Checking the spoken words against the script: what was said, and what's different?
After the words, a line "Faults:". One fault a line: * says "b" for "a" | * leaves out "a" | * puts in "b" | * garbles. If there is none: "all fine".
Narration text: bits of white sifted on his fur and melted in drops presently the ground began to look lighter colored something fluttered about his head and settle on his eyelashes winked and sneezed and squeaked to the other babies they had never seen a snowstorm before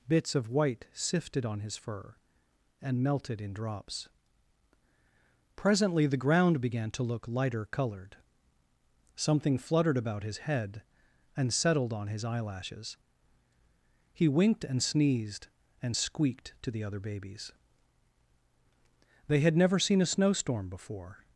bits of white sifted on his fur and melted in drops presently the ground began to look lighter colored something fluttered about his head and settled on his eyelashes he winked and sneezed and squeaked to the other babies they had never seen a snowstorm before
Faults:
* says "settled" for "settle"
* puts in "he"